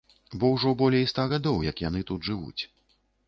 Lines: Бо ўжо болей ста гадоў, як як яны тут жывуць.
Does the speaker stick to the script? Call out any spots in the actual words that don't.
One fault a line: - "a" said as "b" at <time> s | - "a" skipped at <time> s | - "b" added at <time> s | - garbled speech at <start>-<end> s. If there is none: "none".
- "як" skipped at 1.8 s